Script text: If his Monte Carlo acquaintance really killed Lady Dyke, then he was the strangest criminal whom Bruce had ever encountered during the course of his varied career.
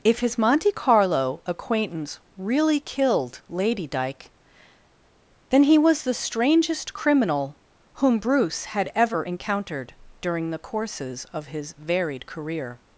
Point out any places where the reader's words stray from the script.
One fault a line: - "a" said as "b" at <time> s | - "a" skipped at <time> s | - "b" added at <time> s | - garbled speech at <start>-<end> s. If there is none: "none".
- "course" said as "courses" at 10.6 s